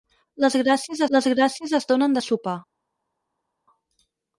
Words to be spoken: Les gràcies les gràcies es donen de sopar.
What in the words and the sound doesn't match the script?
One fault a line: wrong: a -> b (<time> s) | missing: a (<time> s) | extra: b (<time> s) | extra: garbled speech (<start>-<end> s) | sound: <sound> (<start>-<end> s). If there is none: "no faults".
no faults